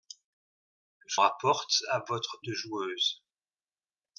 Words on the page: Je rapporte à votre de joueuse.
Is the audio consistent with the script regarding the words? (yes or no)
yes